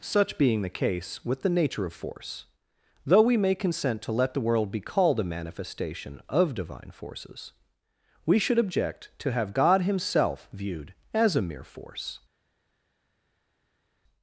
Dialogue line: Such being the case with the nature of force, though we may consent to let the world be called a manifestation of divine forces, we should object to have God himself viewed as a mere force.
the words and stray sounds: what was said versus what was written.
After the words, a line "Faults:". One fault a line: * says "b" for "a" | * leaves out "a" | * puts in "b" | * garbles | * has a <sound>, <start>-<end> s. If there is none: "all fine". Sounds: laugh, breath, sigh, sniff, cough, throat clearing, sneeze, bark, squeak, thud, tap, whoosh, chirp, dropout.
Such being the case with the nature of force, though we may consent to let the world be called a manifestation of divine forces, we should object to have God himself viewed as a mere force.
Faults:
all fine